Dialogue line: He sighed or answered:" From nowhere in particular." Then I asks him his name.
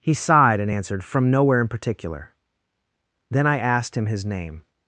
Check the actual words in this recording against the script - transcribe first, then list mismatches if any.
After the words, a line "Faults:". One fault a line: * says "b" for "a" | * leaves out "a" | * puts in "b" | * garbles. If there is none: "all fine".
He sighed and answered:" From nowhere in particular." Then I asked him his name.
Faults:
* says "and" for "or"
* says "asked" for "asks"